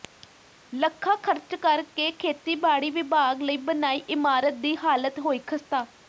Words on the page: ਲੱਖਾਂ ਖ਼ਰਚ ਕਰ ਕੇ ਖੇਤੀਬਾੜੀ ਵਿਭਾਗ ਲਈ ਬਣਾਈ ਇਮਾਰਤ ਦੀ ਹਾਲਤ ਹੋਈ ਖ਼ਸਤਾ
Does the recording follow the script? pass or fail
pass